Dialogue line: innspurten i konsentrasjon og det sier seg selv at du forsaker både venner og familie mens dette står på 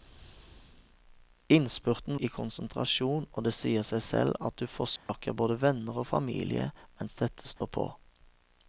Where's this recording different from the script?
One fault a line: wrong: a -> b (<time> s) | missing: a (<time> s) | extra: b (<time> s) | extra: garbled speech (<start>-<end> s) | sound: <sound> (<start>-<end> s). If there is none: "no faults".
sound: dropout (5.0-5.1 s)
sound: dropout (7.6-7.6 s)